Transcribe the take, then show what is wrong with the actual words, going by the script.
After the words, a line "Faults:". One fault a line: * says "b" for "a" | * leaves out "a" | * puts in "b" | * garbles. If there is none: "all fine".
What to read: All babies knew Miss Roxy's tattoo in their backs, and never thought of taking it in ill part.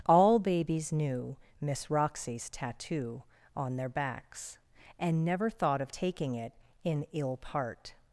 All babies knew Miss Roxy's tattoo on their backs, and never thought of taking it in ill part.
Faults:
* says "on" for "in"